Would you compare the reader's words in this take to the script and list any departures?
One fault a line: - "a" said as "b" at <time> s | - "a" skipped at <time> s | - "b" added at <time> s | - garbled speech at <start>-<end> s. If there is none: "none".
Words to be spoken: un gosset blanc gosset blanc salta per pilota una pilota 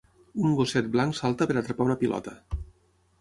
- "gosset blanc" skipped at 1.2 s
- "pilota" said as "atrapar" at 1.6 s